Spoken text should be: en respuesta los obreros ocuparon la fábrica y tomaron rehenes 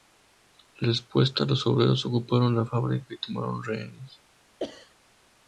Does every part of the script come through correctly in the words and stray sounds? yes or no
no